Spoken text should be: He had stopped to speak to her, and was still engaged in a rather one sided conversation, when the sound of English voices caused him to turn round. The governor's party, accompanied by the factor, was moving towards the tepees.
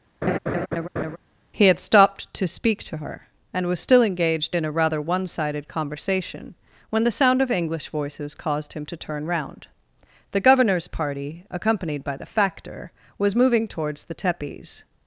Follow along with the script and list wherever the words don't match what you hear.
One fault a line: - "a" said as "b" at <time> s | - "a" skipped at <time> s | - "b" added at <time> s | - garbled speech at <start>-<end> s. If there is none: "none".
none